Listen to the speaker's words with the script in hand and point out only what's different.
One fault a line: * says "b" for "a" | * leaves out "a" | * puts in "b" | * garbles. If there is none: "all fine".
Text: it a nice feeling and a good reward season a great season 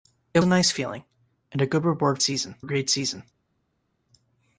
all fine